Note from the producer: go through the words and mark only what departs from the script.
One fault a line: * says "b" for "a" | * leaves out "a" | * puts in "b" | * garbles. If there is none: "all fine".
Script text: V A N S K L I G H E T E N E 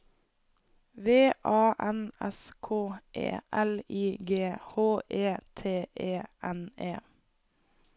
* puts in "E"